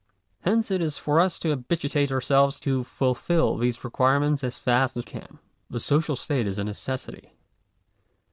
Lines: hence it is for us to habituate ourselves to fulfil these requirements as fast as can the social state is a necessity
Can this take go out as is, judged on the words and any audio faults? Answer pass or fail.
pass